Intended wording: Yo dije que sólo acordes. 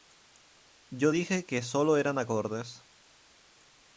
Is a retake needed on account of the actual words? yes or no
yes